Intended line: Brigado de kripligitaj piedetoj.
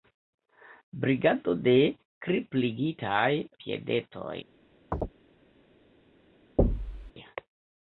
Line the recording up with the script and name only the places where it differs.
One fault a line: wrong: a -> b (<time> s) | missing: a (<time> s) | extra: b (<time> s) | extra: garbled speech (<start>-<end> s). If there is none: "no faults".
no faults